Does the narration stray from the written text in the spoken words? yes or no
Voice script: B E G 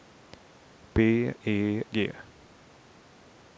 no